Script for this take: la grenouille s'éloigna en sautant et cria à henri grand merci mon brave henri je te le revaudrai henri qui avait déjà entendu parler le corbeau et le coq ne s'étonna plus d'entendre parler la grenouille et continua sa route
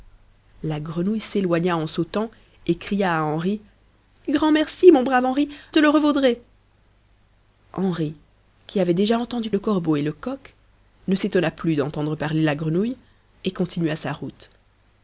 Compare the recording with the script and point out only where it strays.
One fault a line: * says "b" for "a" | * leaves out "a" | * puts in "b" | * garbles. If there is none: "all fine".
* leaves out "je"
* leaves out "parler"